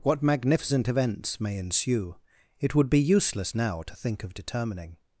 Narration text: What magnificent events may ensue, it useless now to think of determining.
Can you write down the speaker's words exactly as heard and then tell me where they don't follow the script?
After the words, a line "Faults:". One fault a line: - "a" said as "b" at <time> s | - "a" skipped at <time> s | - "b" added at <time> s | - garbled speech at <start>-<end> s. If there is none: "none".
What magnificent events may ensue, it would be useless now to think of determining.
Faults:
- "would be" added at 2.7 s